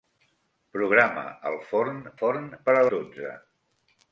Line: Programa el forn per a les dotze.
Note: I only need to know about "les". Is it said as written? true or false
false